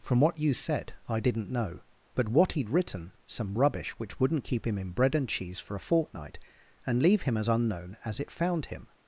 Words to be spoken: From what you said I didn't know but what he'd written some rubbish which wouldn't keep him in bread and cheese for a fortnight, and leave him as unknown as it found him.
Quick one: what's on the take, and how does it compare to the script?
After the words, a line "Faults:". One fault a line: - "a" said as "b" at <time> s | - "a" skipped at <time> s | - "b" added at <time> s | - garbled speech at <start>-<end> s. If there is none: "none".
From what you said I didn't know but what he'd written some rubbish which wouldn't keep him in bread and cheese for a fortnight, and leave him as unknown as it found him.
Faults:
none